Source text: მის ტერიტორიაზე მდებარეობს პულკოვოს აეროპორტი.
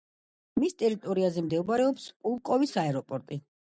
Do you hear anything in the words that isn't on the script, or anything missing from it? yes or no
no